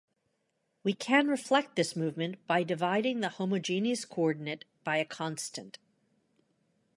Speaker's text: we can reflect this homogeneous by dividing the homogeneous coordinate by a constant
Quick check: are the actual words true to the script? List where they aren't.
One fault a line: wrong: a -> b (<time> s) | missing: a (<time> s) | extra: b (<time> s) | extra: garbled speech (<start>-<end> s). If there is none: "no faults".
wrong: homogeneous -> movement (1.9 s)